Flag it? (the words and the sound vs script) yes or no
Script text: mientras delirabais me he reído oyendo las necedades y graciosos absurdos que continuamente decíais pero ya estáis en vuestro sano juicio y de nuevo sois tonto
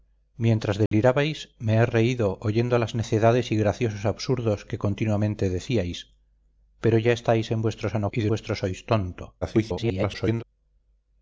yes